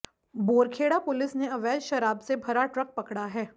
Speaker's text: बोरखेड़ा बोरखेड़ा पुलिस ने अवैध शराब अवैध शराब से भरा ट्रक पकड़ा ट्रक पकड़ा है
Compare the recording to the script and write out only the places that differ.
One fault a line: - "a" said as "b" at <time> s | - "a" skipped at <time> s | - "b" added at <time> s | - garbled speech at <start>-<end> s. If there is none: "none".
- "बोरखेड़ा" skipped at 1.0 s
- "अवैध शराब" skipped at 2.2 s
- "ट्रक पकड़ा" skipped at 3.2 s